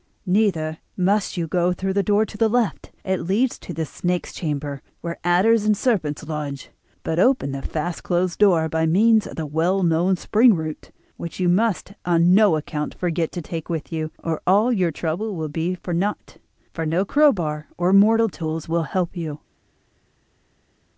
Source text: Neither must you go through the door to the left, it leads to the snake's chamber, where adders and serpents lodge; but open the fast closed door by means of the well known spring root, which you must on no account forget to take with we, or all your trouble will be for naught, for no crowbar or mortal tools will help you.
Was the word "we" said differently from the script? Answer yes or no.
yes